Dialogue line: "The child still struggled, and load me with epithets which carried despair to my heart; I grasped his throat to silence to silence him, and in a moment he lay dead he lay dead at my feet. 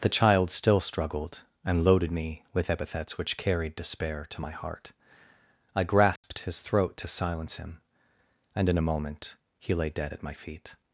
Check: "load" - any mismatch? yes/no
yes